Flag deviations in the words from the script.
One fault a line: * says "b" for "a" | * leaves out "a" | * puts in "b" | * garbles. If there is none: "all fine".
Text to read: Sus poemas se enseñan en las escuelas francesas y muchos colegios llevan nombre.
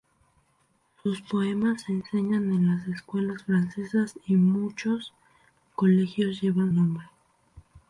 all fine